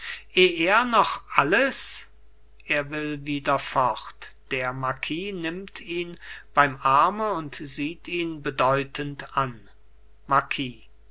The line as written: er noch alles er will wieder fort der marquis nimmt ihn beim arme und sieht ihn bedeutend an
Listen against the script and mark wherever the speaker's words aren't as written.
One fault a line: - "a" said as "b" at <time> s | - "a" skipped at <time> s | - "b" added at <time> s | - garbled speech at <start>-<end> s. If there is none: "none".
none